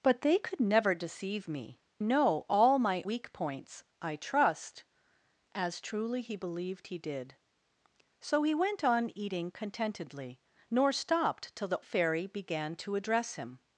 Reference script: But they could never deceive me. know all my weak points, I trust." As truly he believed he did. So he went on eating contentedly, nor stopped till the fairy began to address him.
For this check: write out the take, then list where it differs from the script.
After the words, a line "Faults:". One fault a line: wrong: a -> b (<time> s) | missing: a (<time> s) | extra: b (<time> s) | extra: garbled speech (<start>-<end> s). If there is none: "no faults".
But they could never deceive me. know all my weak points, I trust." As truly he believed he did. So he went on eating contentedly, nor stopped till the fairy began to address him.
Faults:
no faults